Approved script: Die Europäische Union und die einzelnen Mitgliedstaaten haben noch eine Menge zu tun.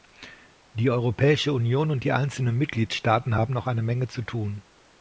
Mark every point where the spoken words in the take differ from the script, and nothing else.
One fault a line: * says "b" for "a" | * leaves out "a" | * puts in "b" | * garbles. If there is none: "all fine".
all fine